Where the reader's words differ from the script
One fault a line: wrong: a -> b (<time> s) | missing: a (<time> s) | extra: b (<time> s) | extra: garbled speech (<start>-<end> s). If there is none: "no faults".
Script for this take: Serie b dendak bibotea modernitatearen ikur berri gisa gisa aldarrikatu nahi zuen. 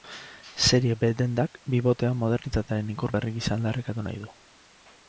missing: gisa (3.6 s)
wrong: zuen -> du (4.3 s)